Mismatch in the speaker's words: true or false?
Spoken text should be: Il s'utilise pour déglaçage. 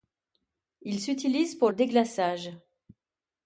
false